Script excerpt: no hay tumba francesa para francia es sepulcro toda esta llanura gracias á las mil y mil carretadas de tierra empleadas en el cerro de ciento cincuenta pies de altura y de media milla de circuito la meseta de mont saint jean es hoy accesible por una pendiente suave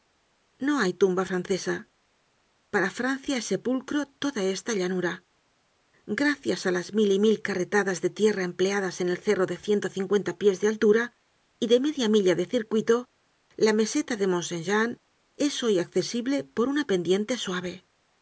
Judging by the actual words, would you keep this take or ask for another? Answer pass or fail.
pass